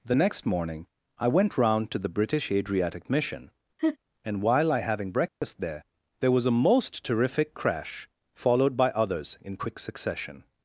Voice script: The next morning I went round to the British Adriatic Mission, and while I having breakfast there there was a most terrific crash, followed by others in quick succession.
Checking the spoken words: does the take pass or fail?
pass